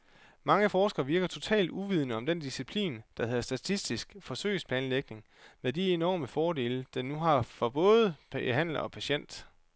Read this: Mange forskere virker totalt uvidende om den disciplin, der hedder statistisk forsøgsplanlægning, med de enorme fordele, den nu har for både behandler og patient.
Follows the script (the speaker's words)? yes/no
yes